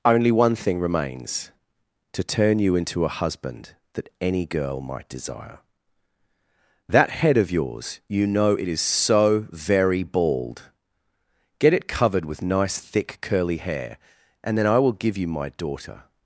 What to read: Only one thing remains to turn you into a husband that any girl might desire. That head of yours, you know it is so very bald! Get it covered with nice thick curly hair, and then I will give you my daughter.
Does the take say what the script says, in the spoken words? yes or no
yes